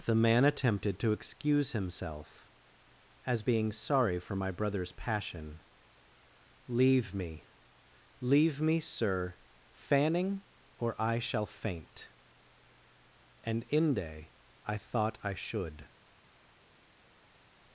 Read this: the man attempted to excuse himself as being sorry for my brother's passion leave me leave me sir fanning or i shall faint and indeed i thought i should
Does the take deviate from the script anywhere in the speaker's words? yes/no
yes